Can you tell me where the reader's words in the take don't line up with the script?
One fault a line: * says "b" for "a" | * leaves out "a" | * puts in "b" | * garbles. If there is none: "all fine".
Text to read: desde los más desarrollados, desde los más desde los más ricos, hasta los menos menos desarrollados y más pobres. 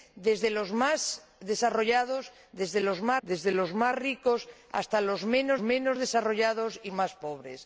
all fine